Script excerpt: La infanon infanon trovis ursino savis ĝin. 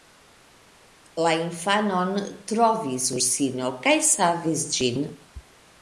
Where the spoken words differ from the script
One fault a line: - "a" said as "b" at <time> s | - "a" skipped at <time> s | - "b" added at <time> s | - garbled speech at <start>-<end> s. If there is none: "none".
- "infanon" skipped at 2.1 s
- "kaj" added at 3.9 s